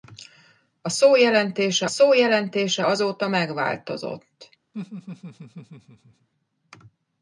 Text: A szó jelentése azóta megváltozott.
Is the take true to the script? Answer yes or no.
no